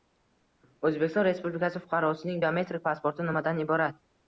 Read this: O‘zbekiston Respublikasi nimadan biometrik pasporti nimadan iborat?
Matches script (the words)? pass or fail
fail